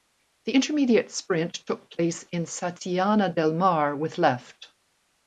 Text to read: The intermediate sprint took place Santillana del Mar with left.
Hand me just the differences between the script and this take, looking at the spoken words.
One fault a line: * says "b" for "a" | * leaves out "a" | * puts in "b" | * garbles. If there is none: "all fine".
* puts in "in"